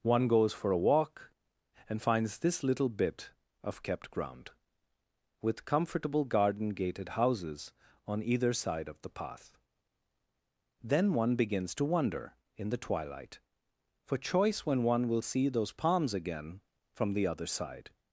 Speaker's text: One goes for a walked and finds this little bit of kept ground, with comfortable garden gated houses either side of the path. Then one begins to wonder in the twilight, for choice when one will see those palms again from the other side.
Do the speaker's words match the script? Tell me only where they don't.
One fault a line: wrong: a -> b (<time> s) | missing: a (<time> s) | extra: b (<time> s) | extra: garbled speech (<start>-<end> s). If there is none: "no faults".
wrong: walked -> walk (0.8 s)
extra: on (8.1 s)